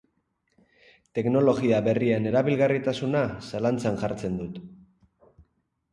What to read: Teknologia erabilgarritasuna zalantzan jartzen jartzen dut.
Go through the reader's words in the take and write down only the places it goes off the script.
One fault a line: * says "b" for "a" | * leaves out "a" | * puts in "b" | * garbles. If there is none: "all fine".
* puts in "berrien"
* leaves out "jartzen"